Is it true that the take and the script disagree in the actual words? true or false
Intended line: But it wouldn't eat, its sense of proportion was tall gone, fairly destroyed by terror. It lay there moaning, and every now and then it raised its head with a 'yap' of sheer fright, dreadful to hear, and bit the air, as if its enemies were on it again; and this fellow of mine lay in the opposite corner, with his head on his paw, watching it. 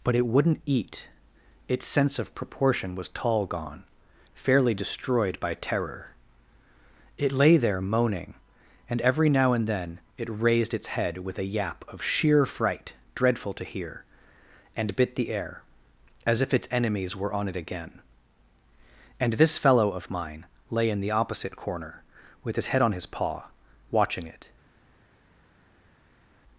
false